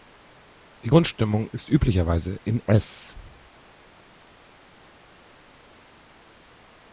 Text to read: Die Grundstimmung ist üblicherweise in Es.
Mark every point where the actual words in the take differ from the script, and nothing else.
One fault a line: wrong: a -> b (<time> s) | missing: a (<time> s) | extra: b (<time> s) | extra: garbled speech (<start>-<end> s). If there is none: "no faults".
no faults